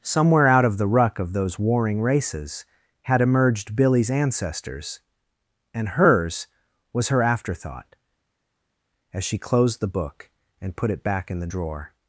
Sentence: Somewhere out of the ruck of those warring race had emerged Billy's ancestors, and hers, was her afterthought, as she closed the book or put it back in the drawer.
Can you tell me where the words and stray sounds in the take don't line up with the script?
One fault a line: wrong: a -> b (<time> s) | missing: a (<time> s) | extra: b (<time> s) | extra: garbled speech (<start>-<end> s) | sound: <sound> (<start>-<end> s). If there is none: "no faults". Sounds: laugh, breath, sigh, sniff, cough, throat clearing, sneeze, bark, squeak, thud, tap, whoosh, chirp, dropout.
wrong: race -> races (2.0 s)
wrong: or -> and (10.6 s)